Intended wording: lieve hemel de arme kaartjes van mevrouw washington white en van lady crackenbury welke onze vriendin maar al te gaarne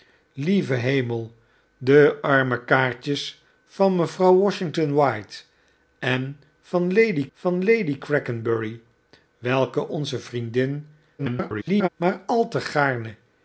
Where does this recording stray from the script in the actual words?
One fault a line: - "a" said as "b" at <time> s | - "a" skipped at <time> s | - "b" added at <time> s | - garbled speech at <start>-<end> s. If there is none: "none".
- "van lady" added at 7.3 s
- garbled speech at 11.2-11.9 s